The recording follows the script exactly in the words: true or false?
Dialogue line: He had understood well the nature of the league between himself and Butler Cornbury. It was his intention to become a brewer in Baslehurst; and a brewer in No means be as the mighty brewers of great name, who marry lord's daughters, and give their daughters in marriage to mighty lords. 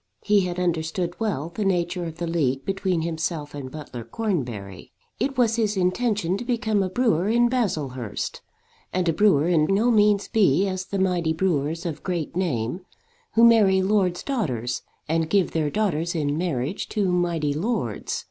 true